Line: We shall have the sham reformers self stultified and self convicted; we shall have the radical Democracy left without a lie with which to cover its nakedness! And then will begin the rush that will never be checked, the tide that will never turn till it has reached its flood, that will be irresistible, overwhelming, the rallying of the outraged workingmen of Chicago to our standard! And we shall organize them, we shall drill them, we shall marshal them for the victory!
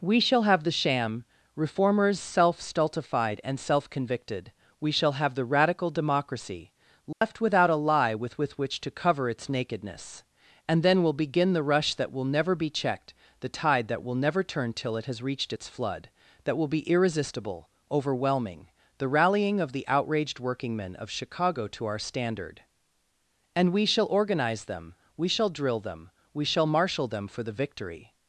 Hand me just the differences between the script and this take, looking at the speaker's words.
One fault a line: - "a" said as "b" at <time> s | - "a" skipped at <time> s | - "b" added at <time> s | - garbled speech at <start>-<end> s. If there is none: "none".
- "with" added at 8.3 s